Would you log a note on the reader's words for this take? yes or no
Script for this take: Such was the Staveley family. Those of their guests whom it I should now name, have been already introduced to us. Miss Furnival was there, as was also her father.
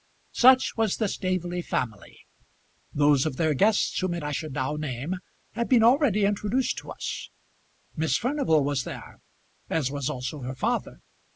no